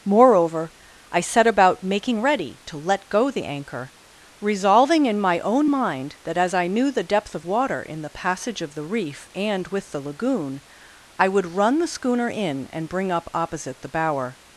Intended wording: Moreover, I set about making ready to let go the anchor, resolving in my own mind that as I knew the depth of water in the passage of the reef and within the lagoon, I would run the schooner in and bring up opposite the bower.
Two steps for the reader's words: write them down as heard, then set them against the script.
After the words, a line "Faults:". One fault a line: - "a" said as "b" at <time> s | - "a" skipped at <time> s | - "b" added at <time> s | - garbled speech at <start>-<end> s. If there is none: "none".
Moreover, I set about making ready to let go the anchor, resolving in my own mind that as I knew the depth of water in the passage of the reef and with the lagoon, I would run the schooner in and bring up opposite the bower.
Faults:
- "within" said as "with" at 9.7 s